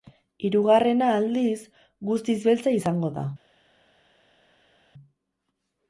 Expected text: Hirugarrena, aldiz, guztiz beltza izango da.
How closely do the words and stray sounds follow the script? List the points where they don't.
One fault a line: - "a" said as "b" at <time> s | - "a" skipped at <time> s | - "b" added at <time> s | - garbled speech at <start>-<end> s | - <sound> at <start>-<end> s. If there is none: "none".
none